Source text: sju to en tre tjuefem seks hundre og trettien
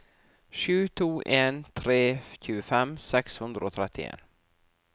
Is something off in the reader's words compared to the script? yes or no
no